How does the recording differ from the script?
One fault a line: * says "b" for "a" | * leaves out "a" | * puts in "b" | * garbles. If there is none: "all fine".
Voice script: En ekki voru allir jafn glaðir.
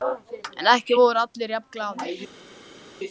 all fine